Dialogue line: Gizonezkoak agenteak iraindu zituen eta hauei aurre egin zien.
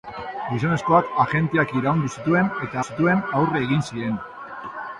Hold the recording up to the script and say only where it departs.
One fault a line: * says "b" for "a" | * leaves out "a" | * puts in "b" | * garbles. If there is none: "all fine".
* says "zituen" for "hauei"